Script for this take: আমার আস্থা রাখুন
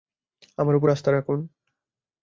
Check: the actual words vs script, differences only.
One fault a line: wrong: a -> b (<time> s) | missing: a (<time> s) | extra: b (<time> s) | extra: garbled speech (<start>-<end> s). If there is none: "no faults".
extra: উপর (0.8 s)